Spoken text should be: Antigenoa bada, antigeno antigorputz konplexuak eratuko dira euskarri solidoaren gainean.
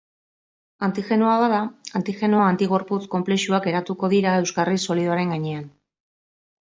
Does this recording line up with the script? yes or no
yes